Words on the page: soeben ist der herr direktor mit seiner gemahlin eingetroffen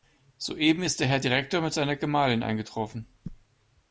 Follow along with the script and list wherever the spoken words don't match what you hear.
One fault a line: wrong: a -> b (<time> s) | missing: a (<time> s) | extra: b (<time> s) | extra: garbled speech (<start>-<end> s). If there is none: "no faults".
no faults